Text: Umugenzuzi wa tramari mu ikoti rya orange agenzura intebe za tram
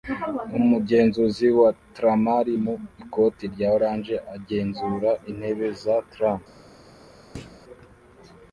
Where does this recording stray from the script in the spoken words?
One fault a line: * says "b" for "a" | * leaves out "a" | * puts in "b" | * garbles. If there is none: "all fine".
all fine